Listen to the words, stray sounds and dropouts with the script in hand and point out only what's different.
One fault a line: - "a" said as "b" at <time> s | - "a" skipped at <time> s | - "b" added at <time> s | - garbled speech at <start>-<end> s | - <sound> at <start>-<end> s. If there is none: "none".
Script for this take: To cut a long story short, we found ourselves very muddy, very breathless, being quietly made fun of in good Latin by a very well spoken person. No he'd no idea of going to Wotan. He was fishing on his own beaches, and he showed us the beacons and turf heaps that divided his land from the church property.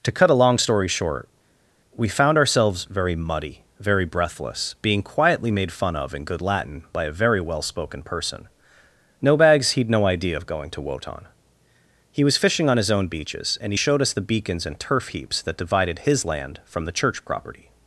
- "bags" added at 9.4 s